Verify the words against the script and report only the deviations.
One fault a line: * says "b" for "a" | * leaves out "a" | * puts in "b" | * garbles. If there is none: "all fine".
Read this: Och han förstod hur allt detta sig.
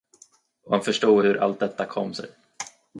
* puts in "kom"